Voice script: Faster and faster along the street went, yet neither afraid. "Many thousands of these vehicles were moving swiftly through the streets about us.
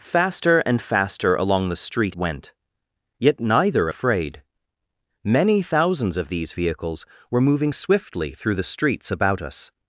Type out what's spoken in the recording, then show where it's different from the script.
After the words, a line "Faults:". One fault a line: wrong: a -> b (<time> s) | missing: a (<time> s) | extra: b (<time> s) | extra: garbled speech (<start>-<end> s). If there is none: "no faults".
Faster and faster along the street went, yet neither afraid. "Many thousands of these vehicles were moving swiftly through the streets about us.
Faults:
no faults